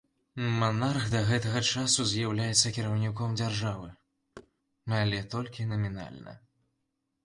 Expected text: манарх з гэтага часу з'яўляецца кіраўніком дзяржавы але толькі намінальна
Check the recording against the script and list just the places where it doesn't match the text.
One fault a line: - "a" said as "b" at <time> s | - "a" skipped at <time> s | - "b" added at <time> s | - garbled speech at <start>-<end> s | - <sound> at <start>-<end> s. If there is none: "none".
- "з" said as "да" at 1.1 s
- thud at 4.4-4.5 s